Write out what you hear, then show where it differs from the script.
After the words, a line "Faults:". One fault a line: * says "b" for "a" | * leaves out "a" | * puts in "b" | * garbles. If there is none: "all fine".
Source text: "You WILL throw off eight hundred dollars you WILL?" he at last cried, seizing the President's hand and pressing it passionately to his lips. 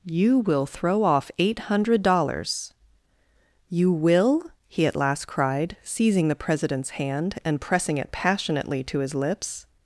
"You WILL throw off eight hundred dollars you WILL?" he at last cried, seizing the President's hand and pressing it passionately to his lips.
Faults:
all fine